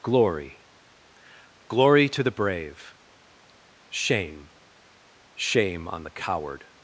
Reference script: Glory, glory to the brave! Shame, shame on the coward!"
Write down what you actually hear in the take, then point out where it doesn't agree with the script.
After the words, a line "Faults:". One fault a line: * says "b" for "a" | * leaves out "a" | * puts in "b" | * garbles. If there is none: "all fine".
Glory, glory to the brave! Shame, shame on the coward!"
Faults:
all fine